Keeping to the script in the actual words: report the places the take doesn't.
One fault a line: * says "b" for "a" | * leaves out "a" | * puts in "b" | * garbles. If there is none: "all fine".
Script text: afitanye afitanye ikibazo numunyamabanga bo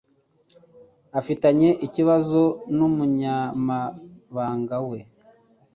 * leaves out "afitanye"
* says "we" for "bo"